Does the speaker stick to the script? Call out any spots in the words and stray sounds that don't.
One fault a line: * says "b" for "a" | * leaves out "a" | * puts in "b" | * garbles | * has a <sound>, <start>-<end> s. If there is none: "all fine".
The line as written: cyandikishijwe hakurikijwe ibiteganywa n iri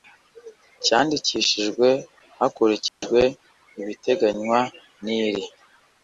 * has a dropout, 2.9-3.0 s